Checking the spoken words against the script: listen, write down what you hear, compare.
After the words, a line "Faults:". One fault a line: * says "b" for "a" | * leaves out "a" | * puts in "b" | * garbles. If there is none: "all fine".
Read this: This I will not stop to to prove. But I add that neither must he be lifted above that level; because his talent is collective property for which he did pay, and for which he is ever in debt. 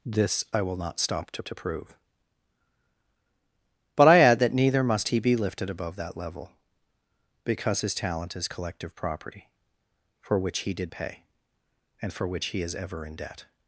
This I will not stop to to prove. But I add that neither must he be lifted above that level; because his talent is collective property for which he did pay, and for which he is ever in debt.
Faults:
all fine